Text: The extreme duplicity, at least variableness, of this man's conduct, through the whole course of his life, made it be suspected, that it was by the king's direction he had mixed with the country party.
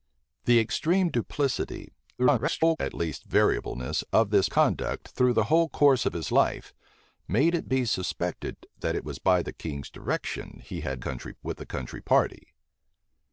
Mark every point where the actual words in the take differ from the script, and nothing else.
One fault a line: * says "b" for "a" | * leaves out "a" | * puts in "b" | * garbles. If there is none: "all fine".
* garbles
* leaves out "man's"
* says "country" for "mixed"